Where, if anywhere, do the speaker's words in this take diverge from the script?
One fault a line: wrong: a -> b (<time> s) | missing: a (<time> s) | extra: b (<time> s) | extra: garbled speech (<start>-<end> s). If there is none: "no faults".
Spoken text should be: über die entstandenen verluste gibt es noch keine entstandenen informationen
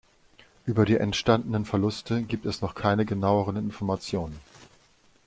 wrong: entstandenen -> genaueren (3.0 s)